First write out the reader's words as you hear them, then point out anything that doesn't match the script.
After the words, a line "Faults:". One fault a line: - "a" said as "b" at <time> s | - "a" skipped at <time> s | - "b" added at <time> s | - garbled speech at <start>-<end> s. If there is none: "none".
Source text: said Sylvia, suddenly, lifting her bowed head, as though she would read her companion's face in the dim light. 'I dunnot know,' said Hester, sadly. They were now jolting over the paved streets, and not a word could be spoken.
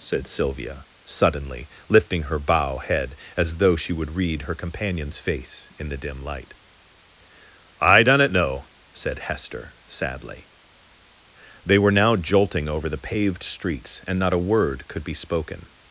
said Sylvia, suddenly, lifting her bow head, as though she would read her companion's face in the dim light. 'I dunnot know,' said Hester, sadly. They were now jolting over the paved streets, and not a word could be spoken.
Faults:
- "bowed" said as "bow" at 2.4 s